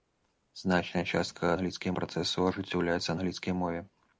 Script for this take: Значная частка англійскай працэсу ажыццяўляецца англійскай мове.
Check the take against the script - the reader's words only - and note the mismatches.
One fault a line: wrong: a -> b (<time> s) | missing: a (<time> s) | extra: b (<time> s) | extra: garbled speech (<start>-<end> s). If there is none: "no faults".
no faults